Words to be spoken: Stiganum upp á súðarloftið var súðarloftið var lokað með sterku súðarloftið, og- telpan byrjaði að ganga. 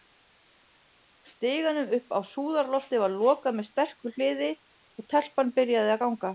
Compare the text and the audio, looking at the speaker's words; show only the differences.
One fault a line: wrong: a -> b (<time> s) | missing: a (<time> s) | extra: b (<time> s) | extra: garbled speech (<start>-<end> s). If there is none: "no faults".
missing: súðarloftið var (3.1 s)
wrong: súðarloftið -> hliði (4.2 s)